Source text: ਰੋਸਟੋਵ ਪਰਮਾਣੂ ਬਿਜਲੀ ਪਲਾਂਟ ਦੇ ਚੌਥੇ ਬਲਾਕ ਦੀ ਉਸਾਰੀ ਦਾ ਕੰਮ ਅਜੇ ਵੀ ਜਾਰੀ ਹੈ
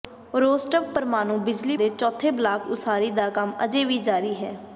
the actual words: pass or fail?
fail